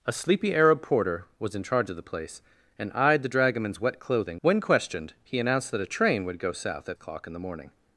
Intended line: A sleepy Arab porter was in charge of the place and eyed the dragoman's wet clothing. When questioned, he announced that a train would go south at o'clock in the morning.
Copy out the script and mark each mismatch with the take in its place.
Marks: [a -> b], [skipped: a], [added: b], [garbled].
A sleepy Arab porter was in charge of the place and eyed the dragoman's wet clothing. When questioned, he announced that a train would go south at o'clock in the morning.